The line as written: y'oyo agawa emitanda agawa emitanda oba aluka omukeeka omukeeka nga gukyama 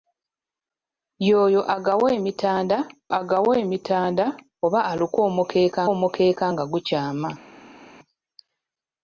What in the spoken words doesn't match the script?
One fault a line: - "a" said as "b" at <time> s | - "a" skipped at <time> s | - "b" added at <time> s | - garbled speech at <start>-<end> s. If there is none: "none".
none